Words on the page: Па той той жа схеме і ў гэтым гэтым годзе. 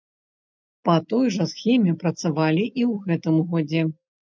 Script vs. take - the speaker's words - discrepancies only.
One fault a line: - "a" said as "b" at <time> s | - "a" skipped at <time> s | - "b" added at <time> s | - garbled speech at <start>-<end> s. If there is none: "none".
- "той" skipped at 1.3 s
- "працавалі" added at 2.0 s
- "гэтым" skipped at 3.4 s